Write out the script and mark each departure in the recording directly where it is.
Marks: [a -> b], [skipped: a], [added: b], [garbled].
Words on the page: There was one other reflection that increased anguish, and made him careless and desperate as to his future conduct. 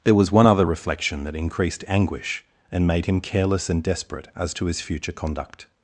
There was one other reflection that increased anguish, and made him careless and desperate as to his future conduct.